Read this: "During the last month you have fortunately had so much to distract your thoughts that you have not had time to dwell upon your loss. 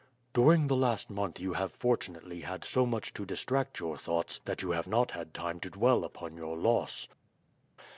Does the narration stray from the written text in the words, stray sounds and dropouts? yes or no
no